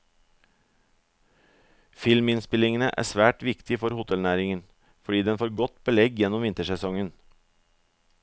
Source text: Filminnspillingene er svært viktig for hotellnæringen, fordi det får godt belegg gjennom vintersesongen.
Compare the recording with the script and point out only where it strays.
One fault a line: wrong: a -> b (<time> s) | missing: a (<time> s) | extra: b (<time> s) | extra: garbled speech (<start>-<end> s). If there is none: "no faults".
wrong: det -> den (5.3 s)